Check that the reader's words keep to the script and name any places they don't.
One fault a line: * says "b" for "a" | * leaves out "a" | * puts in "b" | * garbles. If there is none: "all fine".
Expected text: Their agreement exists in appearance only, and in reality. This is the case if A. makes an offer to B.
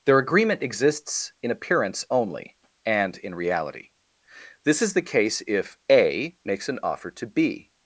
all fine